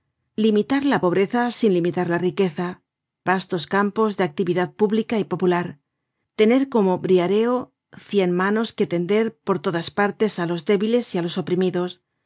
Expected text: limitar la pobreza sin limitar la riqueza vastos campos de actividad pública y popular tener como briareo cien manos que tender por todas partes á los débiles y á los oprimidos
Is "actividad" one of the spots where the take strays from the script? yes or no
no